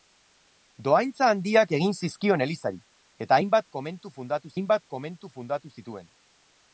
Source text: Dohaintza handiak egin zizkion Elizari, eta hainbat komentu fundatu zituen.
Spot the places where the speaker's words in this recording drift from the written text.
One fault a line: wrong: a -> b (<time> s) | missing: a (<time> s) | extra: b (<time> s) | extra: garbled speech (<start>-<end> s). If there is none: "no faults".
extra: hainbat komentu fundatu (4.6 s)